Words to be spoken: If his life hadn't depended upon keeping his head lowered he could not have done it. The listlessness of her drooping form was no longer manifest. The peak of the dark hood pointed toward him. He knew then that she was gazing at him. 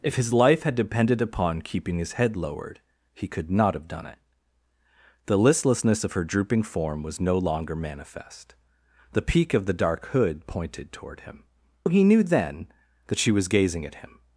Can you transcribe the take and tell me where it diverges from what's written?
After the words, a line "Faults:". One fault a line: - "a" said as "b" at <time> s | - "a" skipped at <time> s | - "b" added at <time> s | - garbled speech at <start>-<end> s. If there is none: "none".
If his life had depended upon keeping his head lowered he could not have done it. The listlessness of her drooping form was no longer manifest. The peak of the dark hood pointed toward him. He knew then that she was gazing at him.
Faults:
- "hadn't" said as "had" at 0.6 s